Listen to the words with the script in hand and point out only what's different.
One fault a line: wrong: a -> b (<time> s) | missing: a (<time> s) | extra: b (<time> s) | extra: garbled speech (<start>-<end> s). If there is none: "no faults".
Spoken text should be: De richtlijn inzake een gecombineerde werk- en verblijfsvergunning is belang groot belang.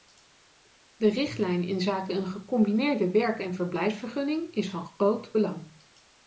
wrong: belang -> van (4.7 s)